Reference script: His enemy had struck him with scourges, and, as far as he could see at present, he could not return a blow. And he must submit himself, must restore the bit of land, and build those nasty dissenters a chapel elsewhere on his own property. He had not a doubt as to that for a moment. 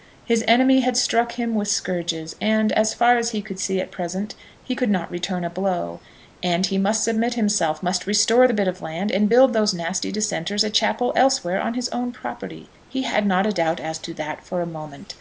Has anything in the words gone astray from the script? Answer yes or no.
no